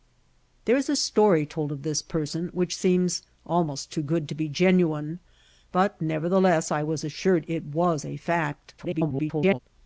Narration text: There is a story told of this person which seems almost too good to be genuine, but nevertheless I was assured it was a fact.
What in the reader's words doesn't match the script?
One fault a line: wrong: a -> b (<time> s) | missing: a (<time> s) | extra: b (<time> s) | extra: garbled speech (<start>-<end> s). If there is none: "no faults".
extra: garbled speech (8.8-9.6 s)